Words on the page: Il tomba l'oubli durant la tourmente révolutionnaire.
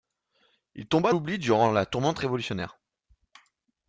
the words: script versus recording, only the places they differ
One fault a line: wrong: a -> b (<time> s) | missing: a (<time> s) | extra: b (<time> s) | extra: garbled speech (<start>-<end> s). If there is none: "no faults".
no faults